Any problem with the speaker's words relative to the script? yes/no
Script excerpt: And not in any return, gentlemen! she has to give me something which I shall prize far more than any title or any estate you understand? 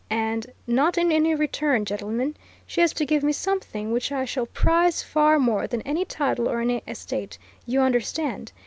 no